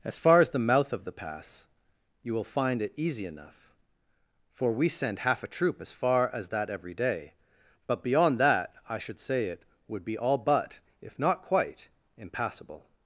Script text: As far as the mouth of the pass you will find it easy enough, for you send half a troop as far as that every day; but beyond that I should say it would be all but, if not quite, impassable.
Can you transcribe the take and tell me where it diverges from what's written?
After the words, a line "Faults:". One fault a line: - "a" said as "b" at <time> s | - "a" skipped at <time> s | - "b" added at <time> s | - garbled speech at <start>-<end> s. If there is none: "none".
As far as the mouth of the pass you will find it easy enough, for we send half a troop as far as that every day; but beyond that I should say it would be all but, if not quite, impassable.
Faults:
- "you" said as "we" at 4.7 s